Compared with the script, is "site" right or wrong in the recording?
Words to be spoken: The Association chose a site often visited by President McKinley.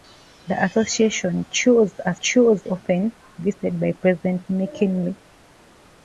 wrong